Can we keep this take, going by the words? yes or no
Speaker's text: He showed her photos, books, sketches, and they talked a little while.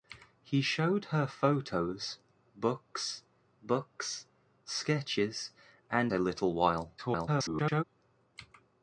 no